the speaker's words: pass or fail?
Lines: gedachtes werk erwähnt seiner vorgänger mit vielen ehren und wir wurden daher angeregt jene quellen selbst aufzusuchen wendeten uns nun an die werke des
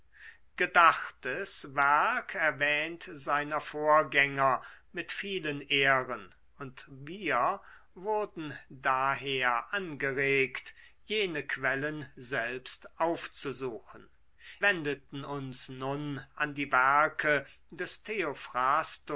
pass